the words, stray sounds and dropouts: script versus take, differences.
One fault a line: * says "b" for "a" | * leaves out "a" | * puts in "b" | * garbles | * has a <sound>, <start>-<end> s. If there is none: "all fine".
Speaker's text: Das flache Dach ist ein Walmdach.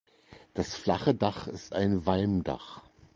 all fine